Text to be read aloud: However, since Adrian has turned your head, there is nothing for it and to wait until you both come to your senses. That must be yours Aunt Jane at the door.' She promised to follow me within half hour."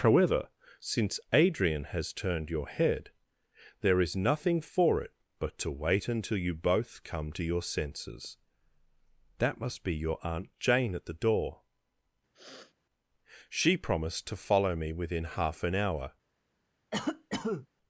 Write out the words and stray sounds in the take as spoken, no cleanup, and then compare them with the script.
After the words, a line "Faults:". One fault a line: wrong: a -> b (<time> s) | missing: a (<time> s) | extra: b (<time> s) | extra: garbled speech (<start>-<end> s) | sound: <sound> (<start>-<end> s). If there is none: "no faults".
However, since Adrian has turned your head, there is nothing for it but to wait until you both come to your senses. That must be your Aunt Jane at the door.' She promised to follow me within half an hour."
Faults:
wrong: and -> but (5.4 s)
wrong: yours -> your (9.9 s)
sound: sniff (12.3-12.7 s)
extra: an (15.6 s)
sound: cough (16.9-17.7 s)